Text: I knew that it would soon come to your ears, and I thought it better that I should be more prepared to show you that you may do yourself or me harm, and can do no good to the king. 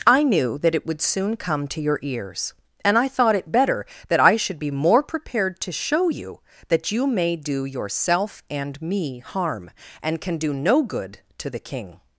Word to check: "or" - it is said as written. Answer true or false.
false